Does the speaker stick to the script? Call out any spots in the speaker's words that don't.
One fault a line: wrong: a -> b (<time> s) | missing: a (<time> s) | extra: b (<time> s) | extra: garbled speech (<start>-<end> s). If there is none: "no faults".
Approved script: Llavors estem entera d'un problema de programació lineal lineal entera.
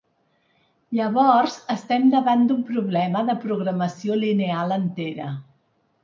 wrong: entera -> davant (2.1 s)
missing: lineal (4.7 s)